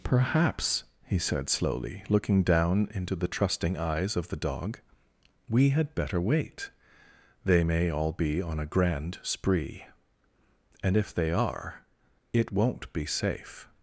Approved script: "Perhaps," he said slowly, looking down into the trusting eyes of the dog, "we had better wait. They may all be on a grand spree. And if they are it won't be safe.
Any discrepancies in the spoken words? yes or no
no